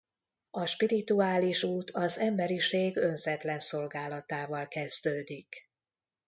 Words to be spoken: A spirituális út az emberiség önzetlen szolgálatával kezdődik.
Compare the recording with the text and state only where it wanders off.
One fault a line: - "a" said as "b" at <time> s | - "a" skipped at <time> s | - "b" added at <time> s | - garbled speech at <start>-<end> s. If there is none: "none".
none